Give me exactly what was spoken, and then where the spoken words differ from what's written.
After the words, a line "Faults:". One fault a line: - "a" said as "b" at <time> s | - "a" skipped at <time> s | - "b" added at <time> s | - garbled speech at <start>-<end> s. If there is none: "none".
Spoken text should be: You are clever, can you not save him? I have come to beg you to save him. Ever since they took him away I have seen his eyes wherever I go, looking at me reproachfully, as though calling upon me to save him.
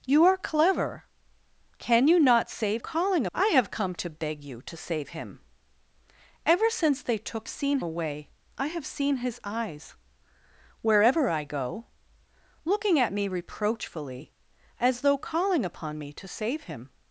You are clever, can you not save calling? I have come to beg you to save him. Ever since they took seen away I have seen his eyes wherever I go, looking at me reproachfully, as though calling upon me to save him.
Faults:
- "him" said as "calling" at 2.8 s
- "him" said as "seen" at 7.5 s